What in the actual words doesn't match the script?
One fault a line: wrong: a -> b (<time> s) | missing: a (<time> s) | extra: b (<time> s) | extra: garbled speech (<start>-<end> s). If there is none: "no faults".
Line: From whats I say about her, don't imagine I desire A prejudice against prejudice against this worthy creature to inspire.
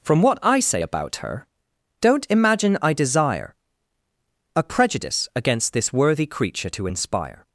wrong: whats -> what (0.2 s)
missing: prejudice against (5.7 s)